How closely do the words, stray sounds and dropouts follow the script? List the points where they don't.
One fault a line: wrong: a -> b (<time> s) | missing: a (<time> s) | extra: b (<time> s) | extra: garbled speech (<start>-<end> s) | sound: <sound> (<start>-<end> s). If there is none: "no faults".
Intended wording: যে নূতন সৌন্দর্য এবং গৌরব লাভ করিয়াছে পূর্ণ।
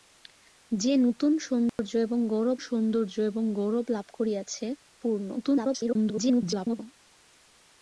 sound: dropout (1.7-1.8 s)
extra: সৌন্দর্য এবং গৌরব (2.6 s)
extra: garbled speech (5.4-6.8 s)